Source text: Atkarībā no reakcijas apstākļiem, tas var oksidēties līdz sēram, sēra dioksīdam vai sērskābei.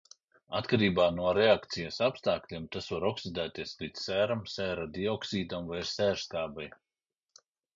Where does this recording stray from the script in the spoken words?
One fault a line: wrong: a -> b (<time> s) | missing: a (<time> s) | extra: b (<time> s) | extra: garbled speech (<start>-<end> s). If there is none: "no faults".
no faults